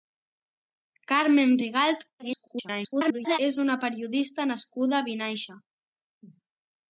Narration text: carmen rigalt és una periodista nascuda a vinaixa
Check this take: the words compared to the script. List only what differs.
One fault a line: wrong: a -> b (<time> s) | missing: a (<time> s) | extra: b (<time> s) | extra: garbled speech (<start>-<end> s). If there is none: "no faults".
extra: garbled speech (2.2-3.4 s)